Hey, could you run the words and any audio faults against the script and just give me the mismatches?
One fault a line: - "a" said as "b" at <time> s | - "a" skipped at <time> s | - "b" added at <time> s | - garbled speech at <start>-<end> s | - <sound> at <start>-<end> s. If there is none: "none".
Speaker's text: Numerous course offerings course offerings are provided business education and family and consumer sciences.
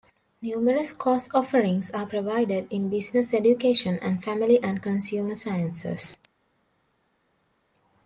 - "course offerings" skipped at 1.9 s
- "in" added at 2.7 s